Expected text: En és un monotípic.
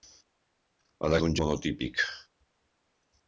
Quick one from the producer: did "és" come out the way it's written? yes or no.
yes